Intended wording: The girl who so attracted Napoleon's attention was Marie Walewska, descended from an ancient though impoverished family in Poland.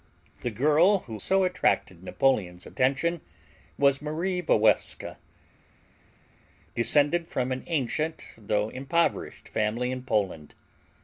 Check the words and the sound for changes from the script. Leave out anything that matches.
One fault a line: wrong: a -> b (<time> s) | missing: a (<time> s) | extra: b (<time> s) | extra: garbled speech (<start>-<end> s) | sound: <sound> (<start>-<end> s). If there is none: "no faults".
no faults